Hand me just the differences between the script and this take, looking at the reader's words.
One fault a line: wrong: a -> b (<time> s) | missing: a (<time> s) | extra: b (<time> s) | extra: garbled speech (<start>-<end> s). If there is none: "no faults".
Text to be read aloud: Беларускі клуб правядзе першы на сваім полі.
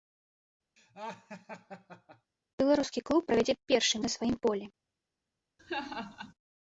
no faults